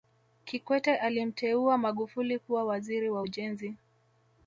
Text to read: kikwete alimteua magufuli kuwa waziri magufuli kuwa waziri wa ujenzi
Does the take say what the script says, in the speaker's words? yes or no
no